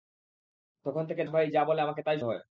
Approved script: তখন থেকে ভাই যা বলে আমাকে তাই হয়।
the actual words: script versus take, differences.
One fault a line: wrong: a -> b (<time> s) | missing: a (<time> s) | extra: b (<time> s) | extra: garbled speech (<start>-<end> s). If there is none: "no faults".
no faults